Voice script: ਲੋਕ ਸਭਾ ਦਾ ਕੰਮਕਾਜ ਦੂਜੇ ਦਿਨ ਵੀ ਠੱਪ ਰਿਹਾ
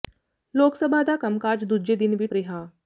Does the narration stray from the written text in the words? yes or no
yes